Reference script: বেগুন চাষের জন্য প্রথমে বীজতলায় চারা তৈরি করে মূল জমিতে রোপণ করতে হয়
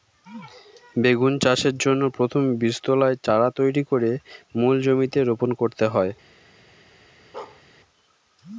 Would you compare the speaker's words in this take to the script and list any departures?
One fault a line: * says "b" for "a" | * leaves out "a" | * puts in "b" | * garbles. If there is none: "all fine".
all fine